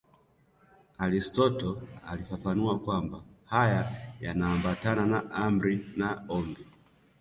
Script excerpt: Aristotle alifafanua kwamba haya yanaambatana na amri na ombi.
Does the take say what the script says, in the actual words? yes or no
yes